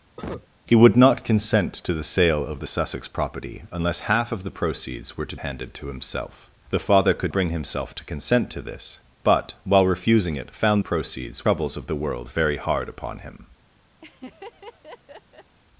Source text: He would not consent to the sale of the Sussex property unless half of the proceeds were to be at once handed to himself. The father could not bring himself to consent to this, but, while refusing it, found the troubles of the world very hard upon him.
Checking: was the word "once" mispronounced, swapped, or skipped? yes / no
yes